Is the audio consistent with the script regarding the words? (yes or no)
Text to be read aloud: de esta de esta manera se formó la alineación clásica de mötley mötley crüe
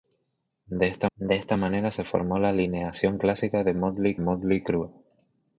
yes